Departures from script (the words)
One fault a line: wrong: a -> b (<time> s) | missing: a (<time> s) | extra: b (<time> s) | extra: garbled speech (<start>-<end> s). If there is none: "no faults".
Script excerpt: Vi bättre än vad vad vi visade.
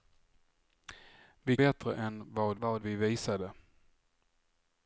no faults